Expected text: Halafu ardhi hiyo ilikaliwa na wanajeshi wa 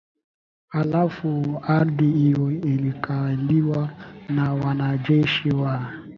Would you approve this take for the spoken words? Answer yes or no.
yes